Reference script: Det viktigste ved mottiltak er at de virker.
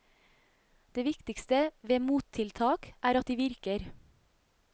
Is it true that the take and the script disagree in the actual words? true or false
false